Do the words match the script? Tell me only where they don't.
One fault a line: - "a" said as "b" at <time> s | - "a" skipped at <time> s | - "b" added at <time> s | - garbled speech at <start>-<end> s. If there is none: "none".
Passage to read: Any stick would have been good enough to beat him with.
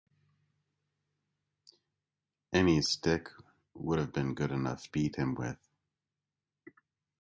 - "to" skipped at 4.9 s